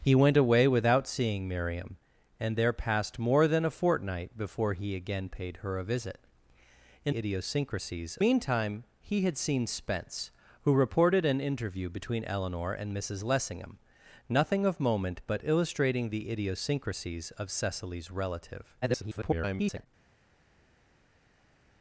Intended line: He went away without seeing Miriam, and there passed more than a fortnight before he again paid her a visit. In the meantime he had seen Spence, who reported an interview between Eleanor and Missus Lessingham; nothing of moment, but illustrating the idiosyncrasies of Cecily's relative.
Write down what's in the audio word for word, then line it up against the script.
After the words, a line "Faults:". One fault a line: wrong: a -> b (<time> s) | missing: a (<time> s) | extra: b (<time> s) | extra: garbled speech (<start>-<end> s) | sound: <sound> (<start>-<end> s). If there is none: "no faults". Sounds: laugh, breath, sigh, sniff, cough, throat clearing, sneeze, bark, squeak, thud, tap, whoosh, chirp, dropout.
He went away without seeing Miriam, and there passed more than a fortnight before he again paid her a visit. In idiosyncrasies meantime he had seen Spence, who reported an interview between Eleanor and Missus Lessingham; nothing of moment, but illustrating the idiosyncrasies of Cecily's relative. [garbled]
Faults:
wrong: the -> idiosyncrasies (7.1 s)
extra: garbled speech (18.8-19.9 s)